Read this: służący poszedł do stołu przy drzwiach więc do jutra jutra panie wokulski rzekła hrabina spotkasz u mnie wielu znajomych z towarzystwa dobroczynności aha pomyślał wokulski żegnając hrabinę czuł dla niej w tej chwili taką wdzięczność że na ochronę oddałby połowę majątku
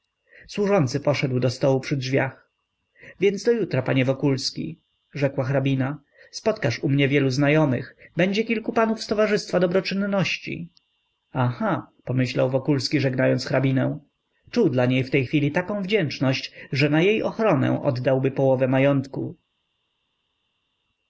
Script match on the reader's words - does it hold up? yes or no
no